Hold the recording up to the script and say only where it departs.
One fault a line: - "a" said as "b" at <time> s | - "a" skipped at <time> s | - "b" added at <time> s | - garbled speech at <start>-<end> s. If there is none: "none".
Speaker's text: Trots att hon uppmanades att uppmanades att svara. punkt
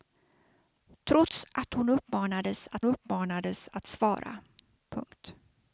none